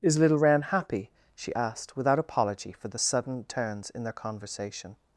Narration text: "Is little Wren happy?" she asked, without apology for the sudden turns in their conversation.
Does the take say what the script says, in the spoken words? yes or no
yes